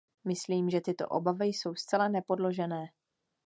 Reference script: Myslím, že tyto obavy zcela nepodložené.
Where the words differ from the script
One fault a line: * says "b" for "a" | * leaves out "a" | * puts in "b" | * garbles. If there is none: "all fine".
* puts in "jsou"